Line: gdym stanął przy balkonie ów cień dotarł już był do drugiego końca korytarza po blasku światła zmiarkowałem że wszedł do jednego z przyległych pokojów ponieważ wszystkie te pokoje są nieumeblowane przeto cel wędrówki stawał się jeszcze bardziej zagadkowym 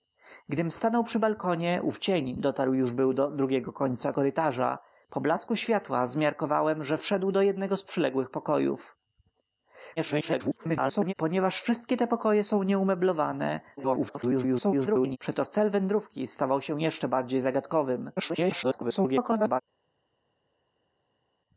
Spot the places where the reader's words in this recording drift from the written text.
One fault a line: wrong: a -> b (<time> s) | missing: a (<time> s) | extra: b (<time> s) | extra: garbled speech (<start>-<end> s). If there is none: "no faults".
extra: garbled speech (10.0-11.1 s)
extra: garbled speech (13.8-15.2 s)
extra: garbled speech (18.2-19.6 s)